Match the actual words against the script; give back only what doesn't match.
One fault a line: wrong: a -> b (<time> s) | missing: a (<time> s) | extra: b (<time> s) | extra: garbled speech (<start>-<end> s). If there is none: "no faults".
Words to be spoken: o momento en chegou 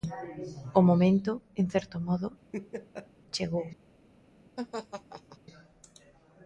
extra: certo modo (1.7 s)